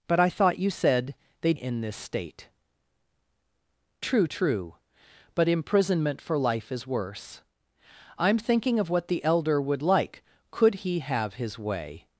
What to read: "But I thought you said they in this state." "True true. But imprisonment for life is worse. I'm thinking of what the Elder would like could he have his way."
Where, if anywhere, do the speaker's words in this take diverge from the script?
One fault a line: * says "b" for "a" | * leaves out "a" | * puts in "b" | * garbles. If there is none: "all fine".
all fine